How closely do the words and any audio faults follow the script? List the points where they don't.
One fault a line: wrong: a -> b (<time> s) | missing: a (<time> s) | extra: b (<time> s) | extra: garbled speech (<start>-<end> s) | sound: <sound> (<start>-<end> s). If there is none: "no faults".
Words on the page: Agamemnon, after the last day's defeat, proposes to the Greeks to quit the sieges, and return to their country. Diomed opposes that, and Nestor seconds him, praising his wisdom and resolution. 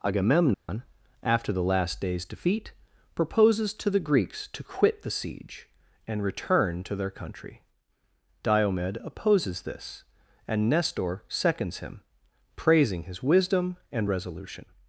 sound: dropout (0.5-0.7 s)
wrong: sieges -> siege (5.1 s)
wrong: that -> this (9.6 s)